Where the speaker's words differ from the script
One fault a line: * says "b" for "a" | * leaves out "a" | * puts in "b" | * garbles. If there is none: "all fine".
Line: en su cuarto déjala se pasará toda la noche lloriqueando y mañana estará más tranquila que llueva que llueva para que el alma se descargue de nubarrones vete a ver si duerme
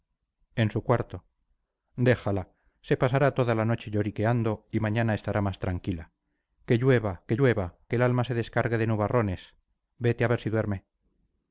* leaves out "para"